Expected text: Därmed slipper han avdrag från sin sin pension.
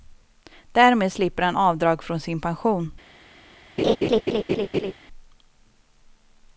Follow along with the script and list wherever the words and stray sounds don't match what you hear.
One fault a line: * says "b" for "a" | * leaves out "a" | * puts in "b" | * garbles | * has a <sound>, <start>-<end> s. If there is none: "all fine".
* leaves out "sin"
* has a laugh, 3.8-4.9 s